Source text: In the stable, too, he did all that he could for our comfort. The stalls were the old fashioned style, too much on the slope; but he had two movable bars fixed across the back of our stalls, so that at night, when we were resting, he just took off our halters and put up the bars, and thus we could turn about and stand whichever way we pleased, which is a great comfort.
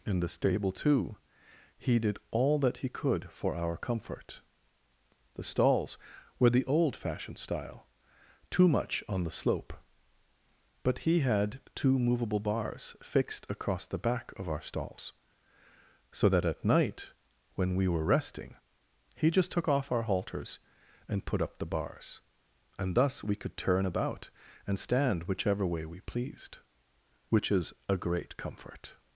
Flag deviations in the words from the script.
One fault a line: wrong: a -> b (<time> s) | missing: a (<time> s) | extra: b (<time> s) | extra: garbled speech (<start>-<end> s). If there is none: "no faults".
no faults